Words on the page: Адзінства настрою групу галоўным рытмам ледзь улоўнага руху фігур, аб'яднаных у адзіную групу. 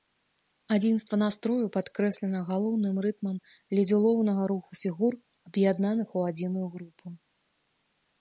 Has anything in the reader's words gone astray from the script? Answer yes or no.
yes